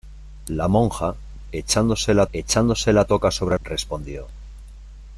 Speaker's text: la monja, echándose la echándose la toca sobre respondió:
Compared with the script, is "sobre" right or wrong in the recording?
right